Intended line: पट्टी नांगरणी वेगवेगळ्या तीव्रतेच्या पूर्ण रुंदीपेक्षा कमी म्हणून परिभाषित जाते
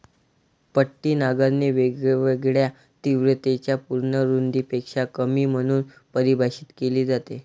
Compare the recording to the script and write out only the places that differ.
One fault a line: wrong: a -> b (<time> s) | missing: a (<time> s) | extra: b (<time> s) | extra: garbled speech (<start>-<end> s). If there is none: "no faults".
extra: केली (6.8 s)